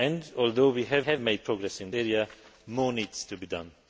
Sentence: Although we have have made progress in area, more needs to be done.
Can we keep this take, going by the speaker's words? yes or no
yes